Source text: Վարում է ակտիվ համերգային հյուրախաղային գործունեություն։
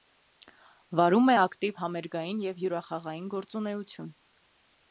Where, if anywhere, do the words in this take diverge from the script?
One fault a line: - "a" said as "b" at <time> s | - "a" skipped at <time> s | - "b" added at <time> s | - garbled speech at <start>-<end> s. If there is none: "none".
- "և" added at 2.5 s